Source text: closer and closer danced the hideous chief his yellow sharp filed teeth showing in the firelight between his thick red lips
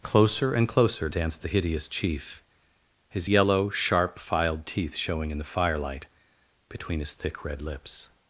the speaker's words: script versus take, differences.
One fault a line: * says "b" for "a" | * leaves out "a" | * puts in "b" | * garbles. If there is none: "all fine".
all fine